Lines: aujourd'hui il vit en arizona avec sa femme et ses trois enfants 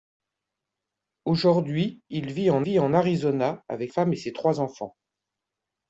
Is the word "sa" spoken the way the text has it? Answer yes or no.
no